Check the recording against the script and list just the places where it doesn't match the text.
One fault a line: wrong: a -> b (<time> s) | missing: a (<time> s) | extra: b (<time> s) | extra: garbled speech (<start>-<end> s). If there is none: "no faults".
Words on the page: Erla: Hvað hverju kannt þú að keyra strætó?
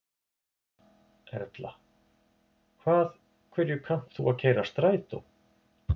no faults